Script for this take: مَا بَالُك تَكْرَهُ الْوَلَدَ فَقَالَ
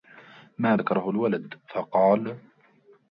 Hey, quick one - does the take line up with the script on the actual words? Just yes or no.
no